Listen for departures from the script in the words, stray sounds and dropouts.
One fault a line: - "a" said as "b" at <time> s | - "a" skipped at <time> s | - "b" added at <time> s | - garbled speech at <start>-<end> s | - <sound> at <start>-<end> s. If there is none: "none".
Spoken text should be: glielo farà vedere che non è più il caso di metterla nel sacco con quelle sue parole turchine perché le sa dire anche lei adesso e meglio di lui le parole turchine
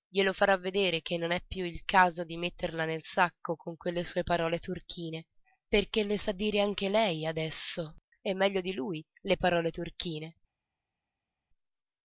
none